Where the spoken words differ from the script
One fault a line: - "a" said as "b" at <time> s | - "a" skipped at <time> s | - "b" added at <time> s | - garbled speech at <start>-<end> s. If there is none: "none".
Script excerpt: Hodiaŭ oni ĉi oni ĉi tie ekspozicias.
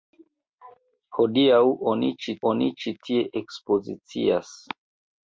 none